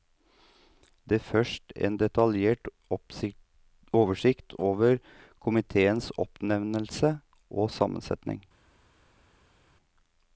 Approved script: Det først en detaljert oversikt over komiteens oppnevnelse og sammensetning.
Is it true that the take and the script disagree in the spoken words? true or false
false